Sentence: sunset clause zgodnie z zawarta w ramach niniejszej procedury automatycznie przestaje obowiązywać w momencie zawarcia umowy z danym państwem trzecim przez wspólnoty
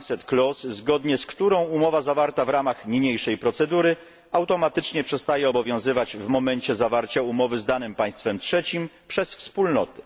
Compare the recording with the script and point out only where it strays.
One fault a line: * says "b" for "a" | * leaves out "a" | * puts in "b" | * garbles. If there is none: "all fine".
* puts in "którą umowa"